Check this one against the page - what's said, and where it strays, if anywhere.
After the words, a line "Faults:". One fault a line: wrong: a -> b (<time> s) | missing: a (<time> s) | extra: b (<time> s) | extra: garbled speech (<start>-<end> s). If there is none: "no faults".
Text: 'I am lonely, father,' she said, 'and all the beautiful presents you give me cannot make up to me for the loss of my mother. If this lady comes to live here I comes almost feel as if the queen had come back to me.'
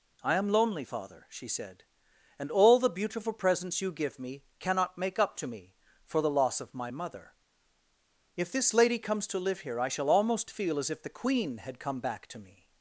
'I am lonely, father,' she said, 'and all the beautiful presents you give me cannot make up to me for the loss of my mother. If this lady comes to live here I shall almost feel as if the queen had come back to me.'
Faults:
wrong: comes -> shall (9.9 s)